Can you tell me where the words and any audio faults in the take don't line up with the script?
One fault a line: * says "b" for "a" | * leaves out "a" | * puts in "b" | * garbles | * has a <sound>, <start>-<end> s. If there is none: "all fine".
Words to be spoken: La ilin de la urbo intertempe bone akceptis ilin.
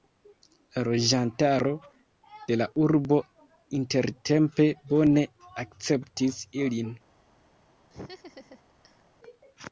* says "loĝantaro" for "ilin"
* has a laugh, 7.9-9.0 s